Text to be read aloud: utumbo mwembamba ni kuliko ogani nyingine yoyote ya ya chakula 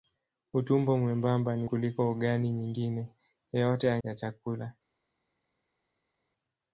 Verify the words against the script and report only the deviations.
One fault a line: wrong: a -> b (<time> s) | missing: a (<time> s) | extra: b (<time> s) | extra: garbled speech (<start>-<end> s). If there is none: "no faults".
no faults